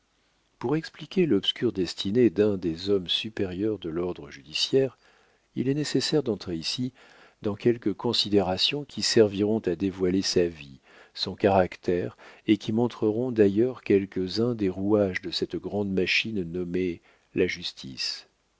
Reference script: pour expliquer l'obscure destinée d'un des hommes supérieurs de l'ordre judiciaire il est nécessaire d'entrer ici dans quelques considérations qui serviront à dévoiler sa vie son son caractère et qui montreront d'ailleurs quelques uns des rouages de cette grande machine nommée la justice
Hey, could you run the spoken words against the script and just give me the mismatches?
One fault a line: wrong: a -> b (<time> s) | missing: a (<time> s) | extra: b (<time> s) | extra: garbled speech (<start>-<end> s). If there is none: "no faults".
missing: son (11.3 s)